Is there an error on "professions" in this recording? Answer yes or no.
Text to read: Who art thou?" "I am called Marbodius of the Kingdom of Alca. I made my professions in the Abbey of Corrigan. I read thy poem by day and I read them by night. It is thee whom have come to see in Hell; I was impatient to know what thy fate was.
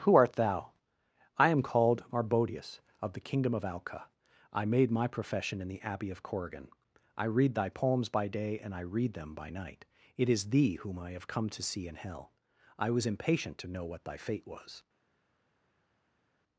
yes